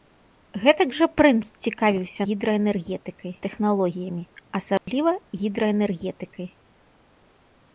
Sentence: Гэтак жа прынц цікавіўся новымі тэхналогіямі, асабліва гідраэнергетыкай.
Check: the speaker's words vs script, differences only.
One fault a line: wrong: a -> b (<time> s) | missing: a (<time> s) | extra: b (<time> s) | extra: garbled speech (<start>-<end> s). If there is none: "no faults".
wrong: новымі -> гідраэнергетыкай (2.3 s)